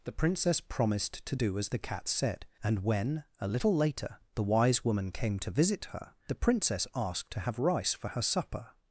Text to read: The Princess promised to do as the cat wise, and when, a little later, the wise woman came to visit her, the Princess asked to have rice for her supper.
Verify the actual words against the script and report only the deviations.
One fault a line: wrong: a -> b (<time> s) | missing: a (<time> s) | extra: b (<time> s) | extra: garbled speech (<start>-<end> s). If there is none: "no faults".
wrong: wise -> said (2.1 s)